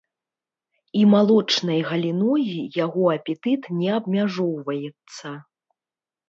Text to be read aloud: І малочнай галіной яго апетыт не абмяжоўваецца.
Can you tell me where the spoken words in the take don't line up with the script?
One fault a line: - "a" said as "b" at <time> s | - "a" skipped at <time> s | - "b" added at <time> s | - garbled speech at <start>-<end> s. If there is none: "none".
none